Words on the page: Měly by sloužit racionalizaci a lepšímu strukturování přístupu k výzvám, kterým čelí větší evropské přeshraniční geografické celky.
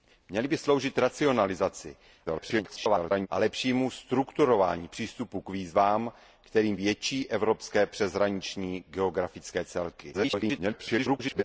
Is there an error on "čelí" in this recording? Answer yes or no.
yes